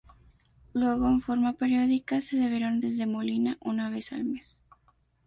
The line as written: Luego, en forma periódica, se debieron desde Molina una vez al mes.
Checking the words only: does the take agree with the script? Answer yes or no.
yes